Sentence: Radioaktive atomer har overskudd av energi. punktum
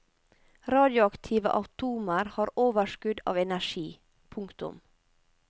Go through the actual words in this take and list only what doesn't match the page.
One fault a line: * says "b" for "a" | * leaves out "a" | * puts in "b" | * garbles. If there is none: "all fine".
all fine